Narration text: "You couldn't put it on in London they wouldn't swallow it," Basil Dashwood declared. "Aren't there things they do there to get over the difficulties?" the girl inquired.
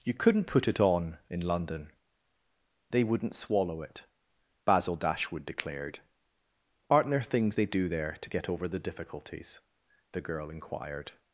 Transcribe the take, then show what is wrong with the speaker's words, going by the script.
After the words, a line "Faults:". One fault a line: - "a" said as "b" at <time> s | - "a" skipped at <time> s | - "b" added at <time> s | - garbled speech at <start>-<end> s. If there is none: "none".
"You couldn't put it on in London they wouldn't swallow it," Basil Dashwood declared. "Aren't there things they do there to get over the difficulties?" the girl inquired.
Faults:
none